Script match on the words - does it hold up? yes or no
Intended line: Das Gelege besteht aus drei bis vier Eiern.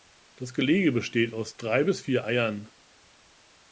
yes